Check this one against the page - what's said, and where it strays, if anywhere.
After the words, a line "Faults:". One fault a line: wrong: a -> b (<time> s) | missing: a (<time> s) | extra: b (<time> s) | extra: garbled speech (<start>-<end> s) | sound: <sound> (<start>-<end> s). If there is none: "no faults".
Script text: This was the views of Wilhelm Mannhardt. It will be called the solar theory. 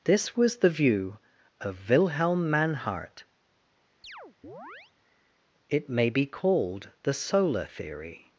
This was the view of Wilhelm Mannhardt. It may be called the solar theory.
Faults:
wrong: views -> view (0.7 s)
sound: chirp (4.0-4.9 s)
wrong: will -> may (5.9 s)